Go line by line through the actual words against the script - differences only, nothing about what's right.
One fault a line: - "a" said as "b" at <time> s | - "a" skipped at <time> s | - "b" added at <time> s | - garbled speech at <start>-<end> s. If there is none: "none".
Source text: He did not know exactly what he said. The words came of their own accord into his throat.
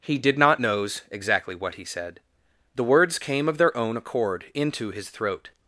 - "know" said as "knows" at 0.6 s